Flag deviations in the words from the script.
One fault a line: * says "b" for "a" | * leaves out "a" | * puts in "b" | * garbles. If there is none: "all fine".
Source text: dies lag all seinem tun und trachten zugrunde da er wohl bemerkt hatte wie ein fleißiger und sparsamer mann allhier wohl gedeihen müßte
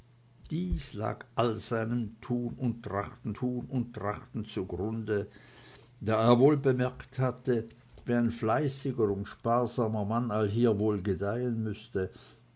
* puts in "tun und trachten"